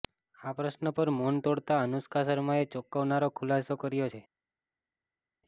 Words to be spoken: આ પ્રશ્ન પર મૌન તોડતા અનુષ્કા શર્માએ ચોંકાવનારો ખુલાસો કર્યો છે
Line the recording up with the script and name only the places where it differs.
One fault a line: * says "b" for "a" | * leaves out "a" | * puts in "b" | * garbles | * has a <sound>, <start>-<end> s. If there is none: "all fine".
all fine